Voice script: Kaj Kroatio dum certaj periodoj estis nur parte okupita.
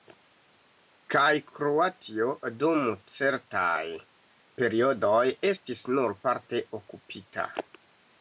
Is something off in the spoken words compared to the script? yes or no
no